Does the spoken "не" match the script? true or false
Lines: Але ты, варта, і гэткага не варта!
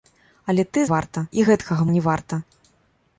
true